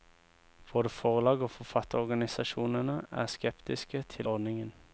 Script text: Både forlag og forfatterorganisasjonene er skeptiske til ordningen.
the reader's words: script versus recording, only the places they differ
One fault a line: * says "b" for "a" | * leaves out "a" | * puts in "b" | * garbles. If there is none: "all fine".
all fine